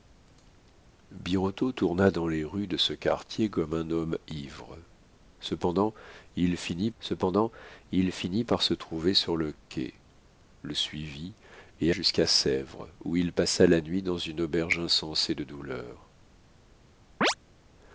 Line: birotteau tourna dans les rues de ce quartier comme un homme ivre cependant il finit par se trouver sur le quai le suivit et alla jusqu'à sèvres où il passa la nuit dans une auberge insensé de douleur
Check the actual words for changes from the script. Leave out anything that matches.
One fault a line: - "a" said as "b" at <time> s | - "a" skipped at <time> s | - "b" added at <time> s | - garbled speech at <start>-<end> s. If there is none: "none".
- "cependant il finit" added at 7.0 s
- "alla" skipped at 11.9 s